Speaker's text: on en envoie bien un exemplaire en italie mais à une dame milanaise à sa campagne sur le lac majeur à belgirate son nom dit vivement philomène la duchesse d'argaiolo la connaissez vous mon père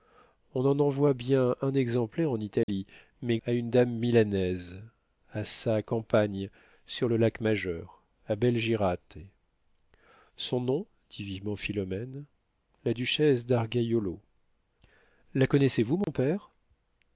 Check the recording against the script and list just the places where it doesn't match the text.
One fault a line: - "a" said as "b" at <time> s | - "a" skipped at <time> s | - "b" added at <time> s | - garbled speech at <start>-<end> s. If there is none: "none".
none